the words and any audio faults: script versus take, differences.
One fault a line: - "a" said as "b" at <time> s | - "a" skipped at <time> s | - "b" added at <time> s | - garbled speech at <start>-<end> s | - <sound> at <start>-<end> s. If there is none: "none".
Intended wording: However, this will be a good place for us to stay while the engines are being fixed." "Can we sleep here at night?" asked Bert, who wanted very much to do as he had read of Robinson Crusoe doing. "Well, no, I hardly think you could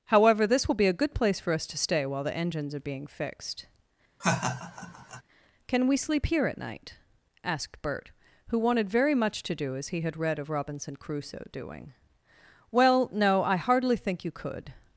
- laugh at 4.2-5.2 s